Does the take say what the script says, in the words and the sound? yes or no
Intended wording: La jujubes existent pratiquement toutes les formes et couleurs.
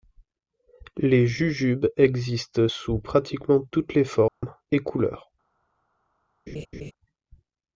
no